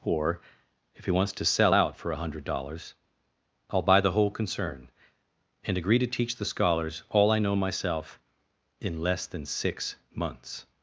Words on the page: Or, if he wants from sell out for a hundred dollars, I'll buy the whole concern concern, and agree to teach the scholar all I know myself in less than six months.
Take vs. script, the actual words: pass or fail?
fail